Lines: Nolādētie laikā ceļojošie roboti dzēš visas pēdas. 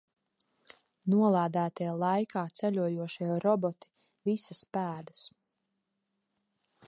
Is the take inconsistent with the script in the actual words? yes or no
yes